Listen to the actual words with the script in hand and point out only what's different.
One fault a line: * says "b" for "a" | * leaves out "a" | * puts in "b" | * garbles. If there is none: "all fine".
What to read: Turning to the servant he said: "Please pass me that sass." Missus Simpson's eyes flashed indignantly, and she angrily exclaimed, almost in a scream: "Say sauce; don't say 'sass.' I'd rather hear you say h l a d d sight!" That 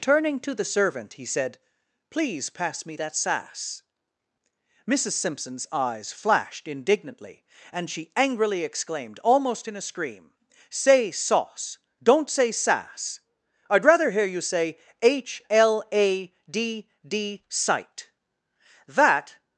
all fine